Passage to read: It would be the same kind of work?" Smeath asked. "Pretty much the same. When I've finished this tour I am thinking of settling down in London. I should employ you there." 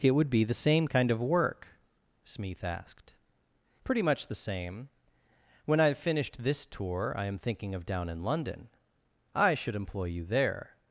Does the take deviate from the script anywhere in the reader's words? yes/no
yes